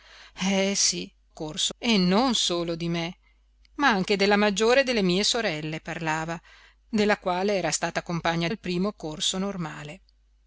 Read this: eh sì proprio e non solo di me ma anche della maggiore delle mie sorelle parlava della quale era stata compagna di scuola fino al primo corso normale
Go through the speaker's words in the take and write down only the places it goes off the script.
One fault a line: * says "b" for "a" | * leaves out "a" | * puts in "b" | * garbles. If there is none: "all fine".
* says "corso" for "proprio"
* leaves out "di scuola fino"